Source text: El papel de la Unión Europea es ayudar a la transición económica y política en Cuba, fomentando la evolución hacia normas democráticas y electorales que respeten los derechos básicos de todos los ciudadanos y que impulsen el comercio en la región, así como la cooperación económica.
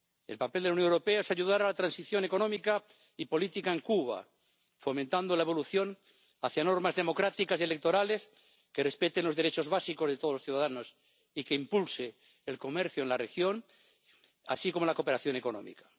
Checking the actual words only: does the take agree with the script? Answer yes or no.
yes